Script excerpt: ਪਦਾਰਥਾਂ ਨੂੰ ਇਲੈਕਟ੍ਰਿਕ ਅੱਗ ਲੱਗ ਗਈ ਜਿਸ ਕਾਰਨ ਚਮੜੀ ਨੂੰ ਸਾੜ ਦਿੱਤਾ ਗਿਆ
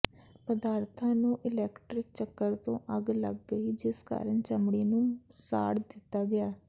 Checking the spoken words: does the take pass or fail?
fail